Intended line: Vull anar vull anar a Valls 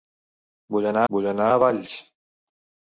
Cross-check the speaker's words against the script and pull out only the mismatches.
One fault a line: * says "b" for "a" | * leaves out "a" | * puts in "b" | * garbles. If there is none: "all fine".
all fine